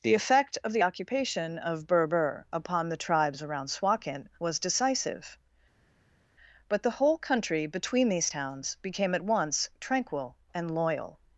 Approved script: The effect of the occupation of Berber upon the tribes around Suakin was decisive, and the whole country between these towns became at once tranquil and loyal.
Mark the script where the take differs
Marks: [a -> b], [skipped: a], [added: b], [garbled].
The effect of the occupation of Berber upon the tribes around Suakin was decisive, [and -> but] the whole country between these towns became at once tranquil and loyal.